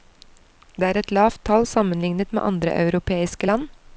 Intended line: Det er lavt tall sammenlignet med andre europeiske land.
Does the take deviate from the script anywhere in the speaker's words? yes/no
yes